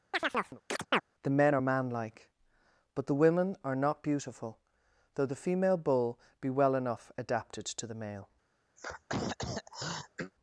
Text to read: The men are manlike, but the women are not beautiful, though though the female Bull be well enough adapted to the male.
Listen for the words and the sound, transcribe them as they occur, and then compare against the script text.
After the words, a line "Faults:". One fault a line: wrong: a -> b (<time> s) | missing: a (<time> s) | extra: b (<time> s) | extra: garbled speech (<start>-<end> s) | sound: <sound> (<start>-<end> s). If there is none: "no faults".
The men are manlike, but the women are not beautiful, though the female Bull be well enough adapted to the male.
Faults:
sound: chirp (0.1-1.0 s)
missing: though (5.2 s)
sound: throat clearing (8.8-10.3 s)